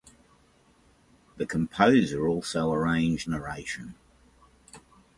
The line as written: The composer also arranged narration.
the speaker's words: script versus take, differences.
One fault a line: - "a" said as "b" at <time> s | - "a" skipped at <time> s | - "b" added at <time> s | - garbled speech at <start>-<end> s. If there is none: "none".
none